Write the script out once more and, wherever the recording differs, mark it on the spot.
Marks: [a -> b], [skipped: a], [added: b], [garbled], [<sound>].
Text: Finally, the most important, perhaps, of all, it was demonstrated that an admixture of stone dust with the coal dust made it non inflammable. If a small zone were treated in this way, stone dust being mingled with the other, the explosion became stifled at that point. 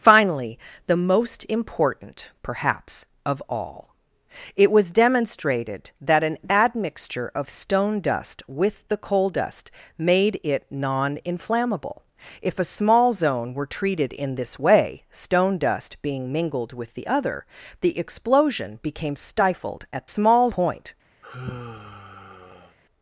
Finally, the most important, perhaps, of all, it was demonstrated that an admixture of stone dust with the coal dust made it non inflammable. If a small zone were treated in this way, stone dust being mingled with the other, the explosion became stifled at [that -> small] point. [sigh]